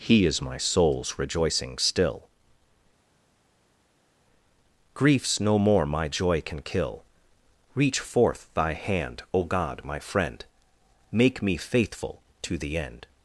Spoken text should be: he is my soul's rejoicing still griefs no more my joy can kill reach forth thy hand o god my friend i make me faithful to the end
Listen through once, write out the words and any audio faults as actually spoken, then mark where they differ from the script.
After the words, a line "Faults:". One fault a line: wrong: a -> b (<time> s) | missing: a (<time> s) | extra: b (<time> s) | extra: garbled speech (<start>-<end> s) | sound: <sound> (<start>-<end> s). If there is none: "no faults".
he is my soul's rejoicing still griefs no more my joy can kill reach forth thy hand o god my friend make me faithful to the end
Faults:
missing: i (10.4 s)